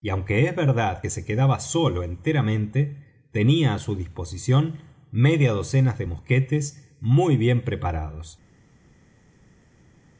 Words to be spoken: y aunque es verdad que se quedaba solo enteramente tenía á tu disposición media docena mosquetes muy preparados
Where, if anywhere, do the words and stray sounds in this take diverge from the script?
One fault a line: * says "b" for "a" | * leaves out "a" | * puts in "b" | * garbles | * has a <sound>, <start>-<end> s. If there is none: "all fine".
* says "su" for "tu"
* puts in "de"
* puts in "bien"